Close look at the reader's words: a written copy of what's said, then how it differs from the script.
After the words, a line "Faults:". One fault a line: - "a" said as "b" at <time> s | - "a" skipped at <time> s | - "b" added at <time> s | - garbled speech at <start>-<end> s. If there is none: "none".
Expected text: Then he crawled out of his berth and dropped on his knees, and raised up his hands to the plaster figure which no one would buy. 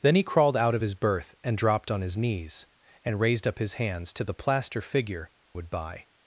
Then he crawled out of his berth and dropped on his knees, and raised up his hands to the plaster figure would buy.
Faults:
- "which no one" skipped at 5.3 s